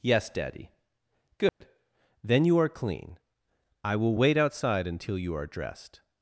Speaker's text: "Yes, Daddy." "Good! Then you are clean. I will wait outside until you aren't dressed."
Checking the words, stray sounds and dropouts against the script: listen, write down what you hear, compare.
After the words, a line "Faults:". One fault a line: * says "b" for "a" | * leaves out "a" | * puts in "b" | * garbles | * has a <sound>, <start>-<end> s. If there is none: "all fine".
"Yes, Daddy." "Good! Then you are clean. I will wait outside until you are dressed."
Faults:
* has a dropout, 1.5-1.6 s
* says "are" for "aren't"